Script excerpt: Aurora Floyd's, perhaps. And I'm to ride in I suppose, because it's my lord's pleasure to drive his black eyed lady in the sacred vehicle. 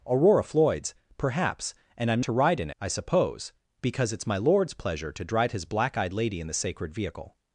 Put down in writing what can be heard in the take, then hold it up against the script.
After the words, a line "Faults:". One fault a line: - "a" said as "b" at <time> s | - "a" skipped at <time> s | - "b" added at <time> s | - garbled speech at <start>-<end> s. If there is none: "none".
Aurora Floyd's, perhaps. And I'm to ride in I suppose, because it's my lord's pleasure to drive his black eyed lady in the sacred vehicle.
Faults:
none